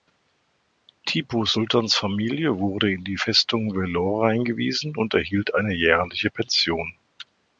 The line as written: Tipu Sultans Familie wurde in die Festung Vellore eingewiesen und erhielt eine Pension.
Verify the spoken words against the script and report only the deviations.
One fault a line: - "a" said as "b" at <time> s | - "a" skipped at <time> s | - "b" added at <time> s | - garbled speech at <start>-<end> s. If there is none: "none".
- "jährliche" added at 5.8 s